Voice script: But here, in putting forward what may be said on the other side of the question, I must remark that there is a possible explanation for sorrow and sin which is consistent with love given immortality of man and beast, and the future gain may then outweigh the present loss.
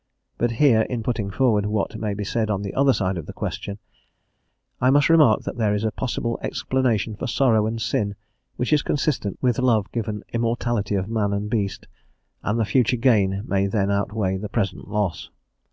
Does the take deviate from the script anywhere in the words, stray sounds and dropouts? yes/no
no